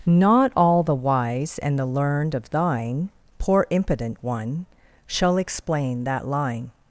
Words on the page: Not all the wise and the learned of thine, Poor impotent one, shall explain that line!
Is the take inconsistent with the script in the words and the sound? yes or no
no